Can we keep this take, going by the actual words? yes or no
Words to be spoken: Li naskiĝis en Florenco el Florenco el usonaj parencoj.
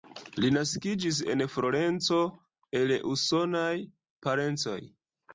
no